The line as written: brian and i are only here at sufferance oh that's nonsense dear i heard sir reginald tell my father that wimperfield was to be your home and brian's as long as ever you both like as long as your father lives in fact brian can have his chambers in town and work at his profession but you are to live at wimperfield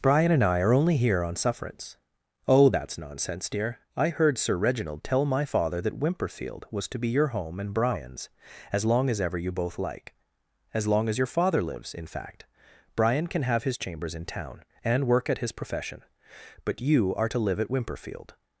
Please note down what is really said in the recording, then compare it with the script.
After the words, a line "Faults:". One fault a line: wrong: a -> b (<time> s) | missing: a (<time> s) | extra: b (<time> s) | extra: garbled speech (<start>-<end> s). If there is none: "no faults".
brian and i are only here on sufferance oh that's nonsense dear i heard sir reginald tell my father that wimperfield was to be your home and brian's as long as ever you both like as long as your father lives in fact brian can have his chambers in town and work at his profession but you are to live at wimperfield
Faults:
wrong: at -> on (1.2 s)